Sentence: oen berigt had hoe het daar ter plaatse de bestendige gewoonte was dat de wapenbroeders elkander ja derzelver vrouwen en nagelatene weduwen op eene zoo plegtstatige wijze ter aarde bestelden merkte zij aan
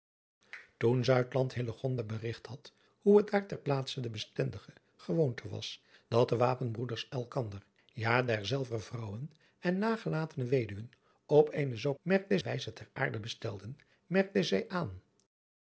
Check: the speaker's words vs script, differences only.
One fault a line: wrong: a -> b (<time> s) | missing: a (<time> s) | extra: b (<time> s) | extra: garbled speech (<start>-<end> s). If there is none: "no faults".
wrong: plegtstatige -> merkte (12.0 s)